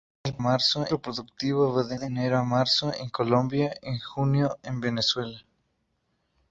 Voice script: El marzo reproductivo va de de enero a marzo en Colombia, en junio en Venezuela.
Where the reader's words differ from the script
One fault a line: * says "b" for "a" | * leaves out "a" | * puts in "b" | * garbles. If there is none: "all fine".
all fine